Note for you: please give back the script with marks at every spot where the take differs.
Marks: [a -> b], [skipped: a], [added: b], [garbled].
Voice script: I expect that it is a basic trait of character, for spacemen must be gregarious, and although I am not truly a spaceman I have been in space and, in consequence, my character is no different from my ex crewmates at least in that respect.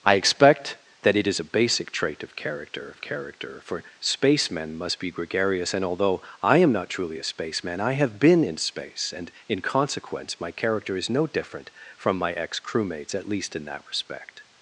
I expect that it is a basic trait of character, [added: of character] for spacemen must be gregarious, and although I am not truly a spaceman I have been in space and, in consequence, my character is no different from my ex crewmates at least in that respect.